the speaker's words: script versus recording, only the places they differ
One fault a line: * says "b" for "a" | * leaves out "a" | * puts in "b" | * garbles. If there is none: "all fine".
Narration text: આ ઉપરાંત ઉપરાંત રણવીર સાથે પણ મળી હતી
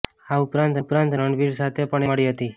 all fine